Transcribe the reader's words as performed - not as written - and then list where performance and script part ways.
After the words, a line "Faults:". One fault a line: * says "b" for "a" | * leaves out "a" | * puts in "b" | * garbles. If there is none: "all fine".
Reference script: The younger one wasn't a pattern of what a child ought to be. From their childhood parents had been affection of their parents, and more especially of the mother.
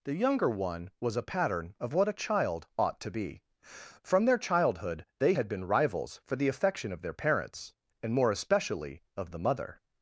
The younger one was a pattern of what a child ought to be. From their childhood they had been rivals for the affection of their parents, and more especially of the mother.
Faults:
* says "was" for "wasn't"
* says "they" for "parents"
* puts in "rivals for the"